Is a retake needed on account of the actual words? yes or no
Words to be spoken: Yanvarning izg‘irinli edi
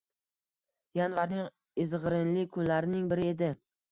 yes